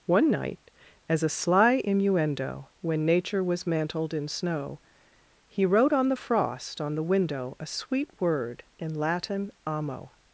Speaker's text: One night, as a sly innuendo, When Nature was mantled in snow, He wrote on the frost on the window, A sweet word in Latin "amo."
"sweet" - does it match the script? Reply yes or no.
yes